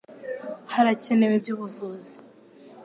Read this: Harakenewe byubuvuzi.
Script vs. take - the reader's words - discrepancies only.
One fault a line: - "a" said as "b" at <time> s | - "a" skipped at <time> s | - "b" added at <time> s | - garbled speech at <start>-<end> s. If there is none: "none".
none